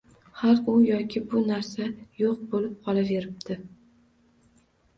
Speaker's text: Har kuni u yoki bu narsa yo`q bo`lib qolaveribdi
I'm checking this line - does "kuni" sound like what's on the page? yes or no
no